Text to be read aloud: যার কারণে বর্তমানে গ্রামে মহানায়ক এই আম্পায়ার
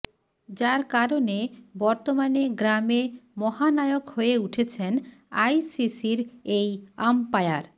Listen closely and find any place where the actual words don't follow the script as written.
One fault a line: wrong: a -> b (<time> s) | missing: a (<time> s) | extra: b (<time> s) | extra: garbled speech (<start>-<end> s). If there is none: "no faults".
extra: হয়ে উঠেছেন আইসিসির (4.1 s)